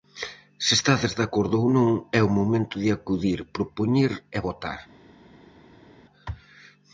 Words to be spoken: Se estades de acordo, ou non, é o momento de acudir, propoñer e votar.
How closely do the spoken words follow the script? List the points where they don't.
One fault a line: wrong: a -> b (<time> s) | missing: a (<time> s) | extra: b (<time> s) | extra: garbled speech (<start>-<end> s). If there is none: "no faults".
no faults